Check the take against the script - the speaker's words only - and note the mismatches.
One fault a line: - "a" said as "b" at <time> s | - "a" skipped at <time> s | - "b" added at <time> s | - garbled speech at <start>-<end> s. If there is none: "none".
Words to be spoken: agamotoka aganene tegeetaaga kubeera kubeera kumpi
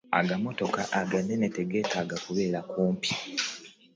- "kubeera" skipped at 2.6 s